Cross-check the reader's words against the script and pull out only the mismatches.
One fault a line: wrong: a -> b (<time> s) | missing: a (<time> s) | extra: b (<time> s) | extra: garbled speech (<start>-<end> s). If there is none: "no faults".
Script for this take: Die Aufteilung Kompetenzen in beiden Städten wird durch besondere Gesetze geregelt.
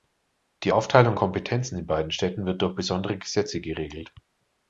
no faults